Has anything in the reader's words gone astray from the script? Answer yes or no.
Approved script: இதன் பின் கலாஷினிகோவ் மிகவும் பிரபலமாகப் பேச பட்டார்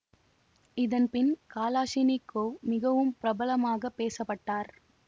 no